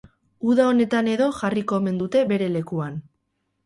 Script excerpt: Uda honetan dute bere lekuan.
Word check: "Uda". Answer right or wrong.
right